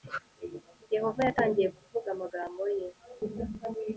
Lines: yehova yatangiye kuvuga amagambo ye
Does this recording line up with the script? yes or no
yes